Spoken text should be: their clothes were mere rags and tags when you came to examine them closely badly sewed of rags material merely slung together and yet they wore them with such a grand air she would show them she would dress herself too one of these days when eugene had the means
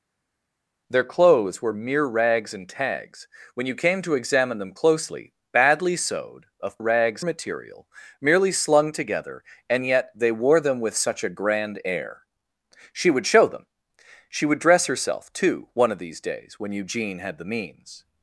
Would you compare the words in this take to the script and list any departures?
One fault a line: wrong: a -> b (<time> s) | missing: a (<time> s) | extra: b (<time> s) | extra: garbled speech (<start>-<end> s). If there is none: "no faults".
no faults